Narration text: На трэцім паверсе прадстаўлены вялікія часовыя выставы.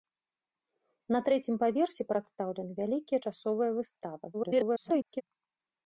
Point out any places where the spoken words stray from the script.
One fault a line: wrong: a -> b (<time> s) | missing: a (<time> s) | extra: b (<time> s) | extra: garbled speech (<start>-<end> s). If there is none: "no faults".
extra: garbled speech (4.3-5.2 s)